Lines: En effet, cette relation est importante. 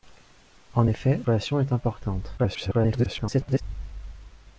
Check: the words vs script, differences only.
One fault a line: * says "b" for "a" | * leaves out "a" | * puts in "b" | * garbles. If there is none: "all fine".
* leaves out "cette"
* garbles